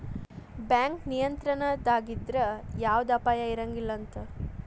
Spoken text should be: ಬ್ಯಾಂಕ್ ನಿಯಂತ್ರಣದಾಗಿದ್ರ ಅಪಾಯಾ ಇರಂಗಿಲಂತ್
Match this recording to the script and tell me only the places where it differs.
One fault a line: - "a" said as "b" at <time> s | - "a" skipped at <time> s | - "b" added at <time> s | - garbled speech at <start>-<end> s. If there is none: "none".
- "ಯವ್ದ" added at 2.8 s